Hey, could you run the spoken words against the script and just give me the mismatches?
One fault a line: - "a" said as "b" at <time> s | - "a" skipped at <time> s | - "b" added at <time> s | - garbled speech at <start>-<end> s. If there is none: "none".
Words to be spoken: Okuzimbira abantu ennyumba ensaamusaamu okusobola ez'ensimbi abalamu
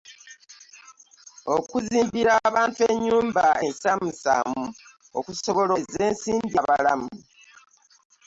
none